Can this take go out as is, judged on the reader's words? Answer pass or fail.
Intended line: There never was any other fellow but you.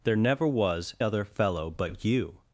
fail